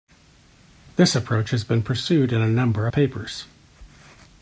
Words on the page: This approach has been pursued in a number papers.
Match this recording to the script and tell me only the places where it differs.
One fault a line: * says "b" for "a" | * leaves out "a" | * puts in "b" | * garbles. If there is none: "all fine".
all fine